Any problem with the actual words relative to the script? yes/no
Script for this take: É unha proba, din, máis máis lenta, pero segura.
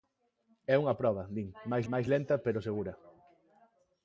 no